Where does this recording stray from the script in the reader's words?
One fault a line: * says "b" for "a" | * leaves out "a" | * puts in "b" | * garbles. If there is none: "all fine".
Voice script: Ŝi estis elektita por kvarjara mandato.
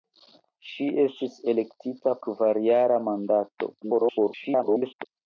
* leaves out "por"
* garbles